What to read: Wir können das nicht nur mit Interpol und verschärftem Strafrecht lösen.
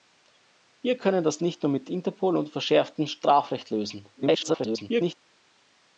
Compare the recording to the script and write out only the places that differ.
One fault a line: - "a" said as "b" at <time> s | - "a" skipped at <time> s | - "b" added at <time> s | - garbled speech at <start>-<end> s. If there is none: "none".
- garbled speech at 4.2-5.2 s